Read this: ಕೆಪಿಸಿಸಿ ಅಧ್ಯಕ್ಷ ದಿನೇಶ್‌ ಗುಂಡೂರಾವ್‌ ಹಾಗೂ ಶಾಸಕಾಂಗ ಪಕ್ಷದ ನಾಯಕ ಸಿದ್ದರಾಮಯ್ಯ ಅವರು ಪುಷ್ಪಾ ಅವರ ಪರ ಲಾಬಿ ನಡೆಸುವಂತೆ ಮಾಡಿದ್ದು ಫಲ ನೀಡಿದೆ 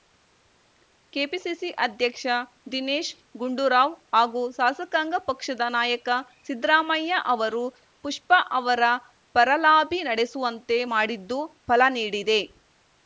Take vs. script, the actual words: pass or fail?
pass